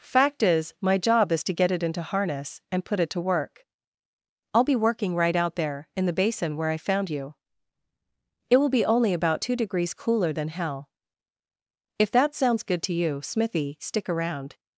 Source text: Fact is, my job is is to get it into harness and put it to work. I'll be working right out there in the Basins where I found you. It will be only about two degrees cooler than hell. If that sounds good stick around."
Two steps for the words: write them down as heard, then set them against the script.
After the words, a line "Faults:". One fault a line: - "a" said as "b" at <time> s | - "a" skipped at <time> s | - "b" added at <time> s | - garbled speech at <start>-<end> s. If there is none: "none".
Fact is, my job is to get it into harness and put it to work. I'll be working right out there in the Basin where I found you. It will be only about two degrees cooler than hell. If that sounds good to you, Smithy, stick around."
Faults:
- "is" skipped at 1.4 s
- "Basins" said as "Basin" at 6.1 s
- "to you Smithy" added at 12.8 s